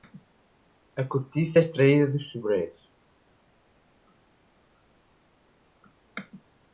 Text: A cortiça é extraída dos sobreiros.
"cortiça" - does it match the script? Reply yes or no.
yes